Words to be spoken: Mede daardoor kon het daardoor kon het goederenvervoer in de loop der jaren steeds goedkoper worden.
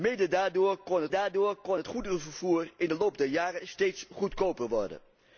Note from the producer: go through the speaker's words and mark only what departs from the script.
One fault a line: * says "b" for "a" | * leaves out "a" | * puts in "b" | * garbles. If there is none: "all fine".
all fine